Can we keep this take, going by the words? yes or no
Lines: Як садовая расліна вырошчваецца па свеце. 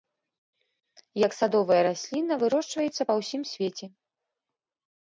no